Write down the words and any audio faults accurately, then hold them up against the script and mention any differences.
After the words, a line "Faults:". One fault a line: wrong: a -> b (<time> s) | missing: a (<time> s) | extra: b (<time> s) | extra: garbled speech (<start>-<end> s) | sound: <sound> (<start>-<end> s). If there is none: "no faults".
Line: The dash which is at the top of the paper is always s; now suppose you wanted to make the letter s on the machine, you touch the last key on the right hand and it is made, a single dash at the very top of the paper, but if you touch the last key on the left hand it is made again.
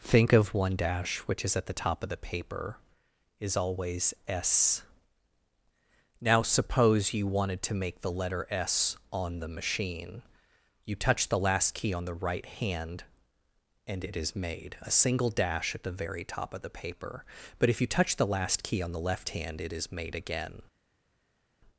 Think of one dash which is at the top of the paper is always s; now suppose you wanted to make the letter s on the machine, you touch the last key on the right hand and it is made, a single dash at the very top of the paper, but if you touch the last key on the left hand it is made again.
Faults:
wrong: The -> Think of one (0.0 s)